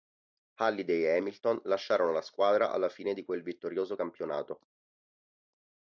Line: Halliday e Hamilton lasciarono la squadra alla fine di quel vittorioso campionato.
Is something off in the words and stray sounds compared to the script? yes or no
no